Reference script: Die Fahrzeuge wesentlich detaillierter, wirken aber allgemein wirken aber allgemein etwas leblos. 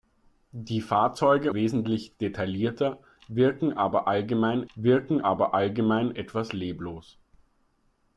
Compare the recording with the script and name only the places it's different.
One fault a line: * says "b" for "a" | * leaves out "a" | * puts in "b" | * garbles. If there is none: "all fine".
all fine